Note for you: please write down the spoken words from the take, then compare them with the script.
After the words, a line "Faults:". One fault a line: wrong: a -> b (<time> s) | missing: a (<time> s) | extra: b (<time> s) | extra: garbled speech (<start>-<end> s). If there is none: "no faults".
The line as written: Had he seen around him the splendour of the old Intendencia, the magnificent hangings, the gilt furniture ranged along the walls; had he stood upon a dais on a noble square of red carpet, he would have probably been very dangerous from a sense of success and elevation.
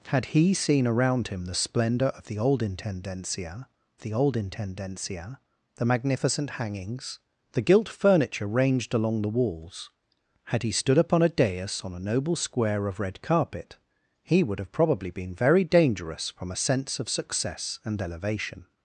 Had he seen around him the splendour of the old Intendencia the old Intendencia, the magnificent hangings, the gilt furniture ranged along the walls; had he stood upon a dais on a noble square of red carpet, he would have probably been very dangerous from a sense of success and elevation.
Faults:
extra: old Intendencia the (4.1 s)